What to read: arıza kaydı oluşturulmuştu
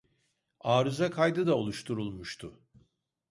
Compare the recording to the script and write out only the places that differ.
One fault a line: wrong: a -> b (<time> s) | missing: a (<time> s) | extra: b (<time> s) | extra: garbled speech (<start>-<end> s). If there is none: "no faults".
extra: da (1.5 s)